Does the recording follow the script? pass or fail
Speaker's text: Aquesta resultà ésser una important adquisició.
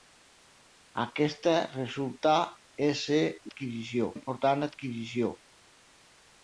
fail